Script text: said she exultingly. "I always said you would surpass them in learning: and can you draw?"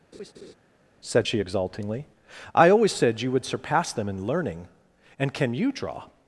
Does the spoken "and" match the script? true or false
true